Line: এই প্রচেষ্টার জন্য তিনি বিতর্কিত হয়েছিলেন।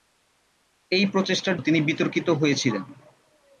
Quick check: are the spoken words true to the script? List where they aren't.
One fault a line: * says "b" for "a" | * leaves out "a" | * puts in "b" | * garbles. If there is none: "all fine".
* leaves out "জন্য"